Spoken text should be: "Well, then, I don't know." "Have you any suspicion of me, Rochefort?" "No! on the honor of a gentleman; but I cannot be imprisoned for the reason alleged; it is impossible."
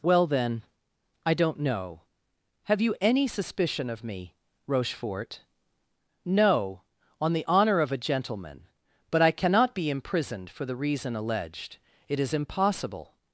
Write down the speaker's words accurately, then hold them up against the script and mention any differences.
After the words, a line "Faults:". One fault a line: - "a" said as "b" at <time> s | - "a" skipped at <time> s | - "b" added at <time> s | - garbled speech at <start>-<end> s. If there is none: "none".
"Well, then, I don't know." "Have you any suspicion of me, Rochefort?" "No! on the honor of a gentleman; but I cannot be imprisoned for the reason alleged; it is impossible."
Faults:
none